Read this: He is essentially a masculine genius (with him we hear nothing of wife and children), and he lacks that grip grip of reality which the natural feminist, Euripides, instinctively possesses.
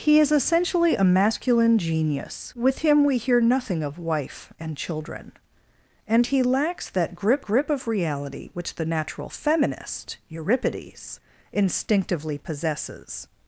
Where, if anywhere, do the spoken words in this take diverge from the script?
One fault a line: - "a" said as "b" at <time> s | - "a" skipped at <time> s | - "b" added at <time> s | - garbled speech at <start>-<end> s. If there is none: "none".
none